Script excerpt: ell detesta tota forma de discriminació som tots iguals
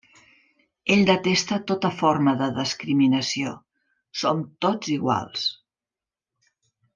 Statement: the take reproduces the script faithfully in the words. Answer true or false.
true